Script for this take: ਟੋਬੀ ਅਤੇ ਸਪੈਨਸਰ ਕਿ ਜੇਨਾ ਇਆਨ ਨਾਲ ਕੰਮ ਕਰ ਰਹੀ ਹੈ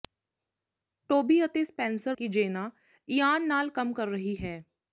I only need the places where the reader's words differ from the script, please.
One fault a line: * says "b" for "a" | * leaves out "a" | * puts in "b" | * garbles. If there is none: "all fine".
all fine